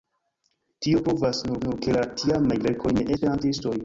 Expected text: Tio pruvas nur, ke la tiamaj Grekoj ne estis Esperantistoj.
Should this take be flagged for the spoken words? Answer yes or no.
yes